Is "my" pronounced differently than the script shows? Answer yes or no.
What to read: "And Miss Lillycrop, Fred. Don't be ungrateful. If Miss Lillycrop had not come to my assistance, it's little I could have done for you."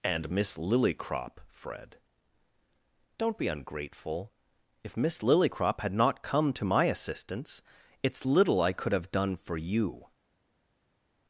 no